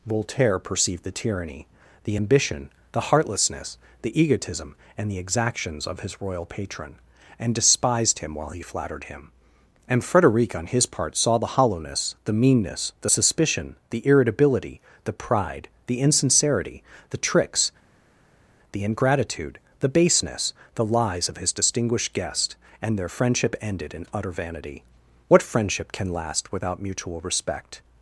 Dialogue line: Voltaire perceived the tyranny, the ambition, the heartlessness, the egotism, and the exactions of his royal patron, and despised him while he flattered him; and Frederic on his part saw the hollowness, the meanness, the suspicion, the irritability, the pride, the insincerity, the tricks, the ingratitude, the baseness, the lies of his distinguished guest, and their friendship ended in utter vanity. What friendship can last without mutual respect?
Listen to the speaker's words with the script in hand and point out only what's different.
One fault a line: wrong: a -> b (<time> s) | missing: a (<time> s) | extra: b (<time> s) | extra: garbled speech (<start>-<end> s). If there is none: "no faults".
no faults